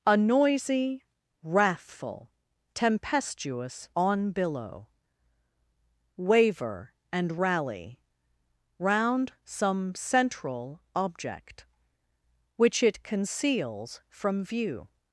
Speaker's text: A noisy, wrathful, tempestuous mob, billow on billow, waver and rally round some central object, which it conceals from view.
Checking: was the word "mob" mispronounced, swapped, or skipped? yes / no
yes